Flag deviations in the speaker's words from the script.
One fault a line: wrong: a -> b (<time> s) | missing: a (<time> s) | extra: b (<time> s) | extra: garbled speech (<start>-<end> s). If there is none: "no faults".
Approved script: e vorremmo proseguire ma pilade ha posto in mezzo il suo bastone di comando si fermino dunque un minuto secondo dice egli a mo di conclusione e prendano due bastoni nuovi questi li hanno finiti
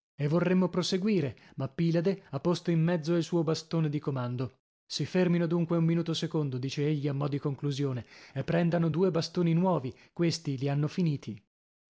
no faults